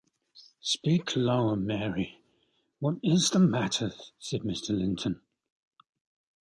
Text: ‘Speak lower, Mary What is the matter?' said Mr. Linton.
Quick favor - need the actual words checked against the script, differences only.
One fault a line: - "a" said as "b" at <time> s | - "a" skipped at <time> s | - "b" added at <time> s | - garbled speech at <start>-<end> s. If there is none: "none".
none